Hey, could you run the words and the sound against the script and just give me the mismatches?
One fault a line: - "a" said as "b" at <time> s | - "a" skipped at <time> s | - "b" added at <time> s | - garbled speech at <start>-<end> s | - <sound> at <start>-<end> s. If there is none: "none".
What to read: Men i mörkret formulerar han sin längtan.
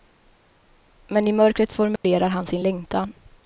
- dropout at 2.0-2.0 s